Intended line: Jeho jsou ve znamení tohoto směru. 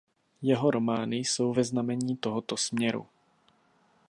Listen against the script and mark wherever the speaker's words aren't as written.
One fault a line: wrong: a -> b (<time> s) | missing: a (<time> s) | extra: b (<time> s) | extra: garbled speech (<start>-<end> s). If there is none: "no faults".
extra: romány (0.7 s)